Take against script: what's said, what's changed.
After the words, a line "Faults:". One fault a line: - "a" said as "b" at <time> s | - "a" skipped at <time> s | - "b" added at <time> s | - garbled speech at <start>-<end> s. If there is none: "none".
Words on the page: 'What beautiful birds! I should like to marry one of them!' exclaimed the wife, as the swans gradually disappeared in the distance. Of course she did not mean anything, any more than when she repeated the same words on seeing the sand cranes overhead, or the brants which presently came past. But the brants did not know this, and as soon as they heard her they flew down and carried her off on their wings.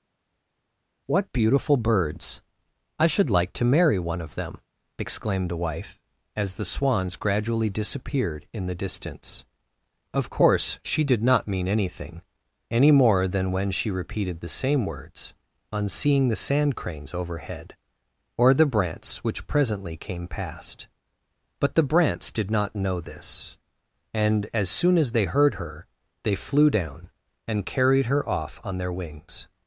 'What beautiful birds! I should like to marry one of them!' exclaimed the wife, as the swans gradually disappeared in the distance. Of course she did not mean anything, any more than when she repeated the same words on seeing the sand cranes overhead, or the brants which presently came past. But the brants did not know this, and as soon as they heard her they flew down and carried her off on their wings.
Faults:
none